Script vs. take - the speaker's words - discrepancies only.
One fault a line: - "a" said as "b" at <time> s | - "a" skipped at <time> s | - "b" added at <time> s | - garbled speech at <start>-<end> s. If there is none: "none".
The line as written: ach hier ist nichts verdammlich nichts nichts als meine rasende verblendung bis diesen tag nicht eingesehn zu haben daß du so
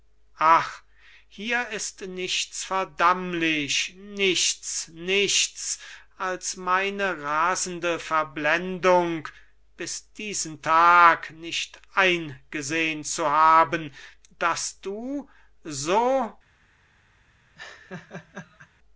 none